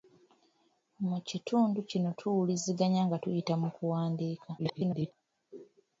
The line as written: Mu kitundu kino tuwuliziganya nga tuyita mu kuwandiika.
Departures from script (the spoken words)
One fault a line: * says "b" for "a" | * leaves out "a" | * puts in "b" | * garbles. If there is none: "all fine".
* garbles